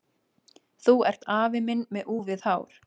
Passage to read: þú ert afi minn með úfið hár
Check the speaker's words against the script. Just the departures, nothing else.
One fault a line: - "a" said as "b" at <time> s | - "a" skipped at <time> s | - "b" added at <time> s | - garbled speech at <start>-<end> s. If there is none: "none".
none